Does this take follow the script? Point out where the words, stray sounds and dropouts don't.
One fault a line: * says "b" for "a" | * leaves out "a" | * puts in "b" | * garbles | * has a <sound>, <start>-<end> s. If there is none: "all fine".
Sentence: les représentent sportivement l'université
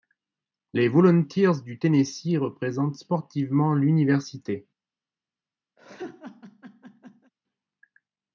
* puts in "volunteers du tennessee"
* has a laugh, 5.8-7.3 s